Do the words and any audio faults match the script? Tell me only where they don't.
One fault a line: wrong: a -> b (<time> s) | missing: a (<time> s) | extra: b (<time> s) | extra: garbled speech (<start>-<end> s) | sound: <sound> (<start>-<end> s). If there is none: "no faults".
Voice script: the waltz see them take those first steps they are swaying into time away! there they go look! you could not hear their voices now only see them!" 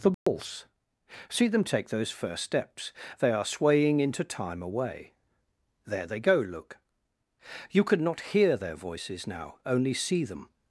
sound: dropout (0.1-0.3 s)